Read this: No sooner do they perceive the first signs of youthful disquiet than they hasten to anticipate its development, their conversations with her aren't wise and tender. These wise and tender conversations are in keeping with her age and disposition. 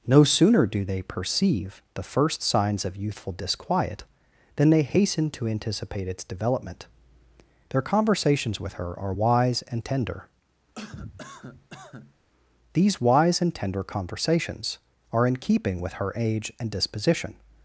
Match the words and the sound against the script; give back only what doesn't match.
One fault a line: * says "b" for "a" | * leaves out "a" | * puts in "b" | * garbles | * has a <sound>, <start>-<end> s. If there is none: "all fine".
* says "are" for "aren't"
* has a cough, 10.8-12.2 s